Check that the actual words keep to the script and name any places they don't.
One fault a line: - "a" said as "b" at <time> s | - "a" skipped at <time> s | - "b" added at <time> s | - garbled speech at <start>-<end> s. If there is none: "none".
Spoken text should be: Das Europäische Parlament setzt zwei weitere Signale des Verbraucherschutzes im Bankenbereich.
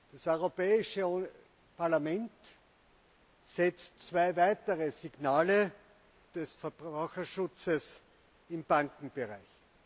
none